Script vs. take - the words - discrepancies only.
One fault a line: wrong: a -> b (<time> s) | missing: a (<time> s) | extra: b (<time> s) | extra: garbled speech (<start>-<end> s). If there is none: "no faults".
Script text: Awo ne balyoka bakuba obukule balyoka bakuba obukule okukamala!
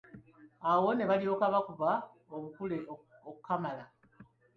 missing: balyoka bakuba obukule (2.8 s)